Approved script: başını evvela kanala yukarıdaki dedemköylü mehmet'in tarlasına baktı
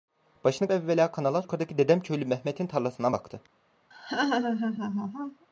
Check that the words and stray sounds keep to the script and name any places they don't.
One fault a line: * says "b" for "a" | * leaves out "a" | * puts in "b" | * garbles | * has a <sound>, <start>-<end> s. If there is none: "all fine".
* has a laugh, 3.9-5.5 s